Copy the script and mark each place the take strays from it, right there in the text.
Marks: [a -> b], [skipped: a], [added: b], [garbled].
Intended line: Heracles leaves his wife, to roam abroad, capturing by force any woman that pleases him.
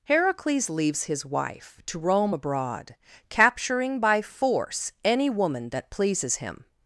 Heracles leaves his wife, to roam abroad, capturing by force any woman that pleases him.